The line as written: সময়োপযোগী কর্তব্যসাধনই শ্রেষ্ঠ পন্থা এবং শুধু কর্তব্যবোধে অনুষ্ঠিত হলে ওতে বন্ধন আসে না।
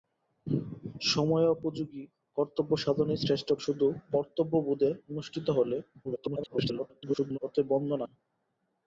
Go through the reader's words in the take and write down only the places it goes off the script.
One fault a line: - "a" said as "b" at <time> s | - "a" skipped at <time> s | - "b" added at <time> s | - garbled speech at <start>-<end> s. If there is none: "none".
- "পন্থা এবং" skipped at 3.5 s
- garbled speech at 6.0-7.4 s
- "আসে" skipped at 8.0 s